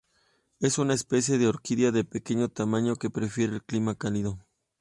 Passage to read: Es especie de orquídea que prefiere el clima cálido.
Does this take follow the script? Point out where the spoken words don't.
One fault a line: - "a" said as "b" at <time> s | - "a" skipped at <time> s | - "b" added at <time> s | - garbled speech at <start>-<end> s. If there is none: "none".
- "una" added at 0.8 s
- "de pequeño tamaño" added at 1.9 s